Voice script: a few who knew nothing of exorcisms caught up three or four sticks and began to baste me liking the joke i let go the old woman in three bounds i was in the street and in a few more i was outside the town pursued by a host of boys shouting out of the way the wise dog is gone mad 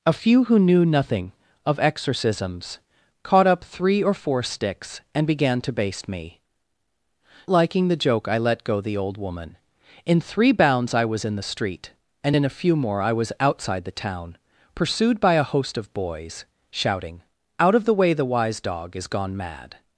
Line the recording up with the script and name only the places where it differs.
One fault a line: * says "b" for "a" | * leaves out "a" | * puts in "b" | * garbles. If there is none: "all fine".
all fine